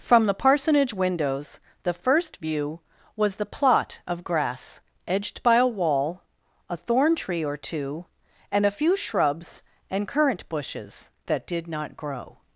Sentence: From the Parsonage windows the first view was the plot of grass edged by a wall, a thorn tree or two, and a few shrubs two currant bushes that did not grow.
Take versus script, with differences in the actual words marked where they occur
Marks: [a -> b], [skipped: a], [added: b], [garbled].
From the Parsonage windows the first view was the plot of grass edged by a wall, a thorn tree or two, and a few shrubs [two -> and] currant bushes that did not grow.